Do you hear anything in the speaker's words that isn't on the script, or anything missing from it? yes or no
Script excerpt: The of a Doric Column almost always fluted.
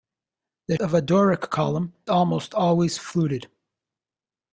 no